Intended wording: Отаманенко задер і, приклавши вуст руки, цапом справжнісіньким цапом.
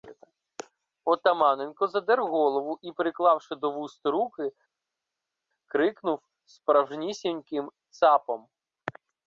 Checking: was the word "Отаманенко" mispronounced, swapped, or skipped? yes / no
no